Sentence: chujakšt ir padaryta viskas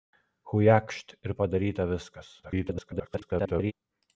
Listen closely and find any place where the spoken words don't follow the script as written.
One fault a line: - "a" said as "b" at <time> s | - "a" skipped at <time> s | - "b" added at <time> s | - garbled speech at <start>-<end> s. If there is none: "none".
- garbled speech at 2.4-3.7 s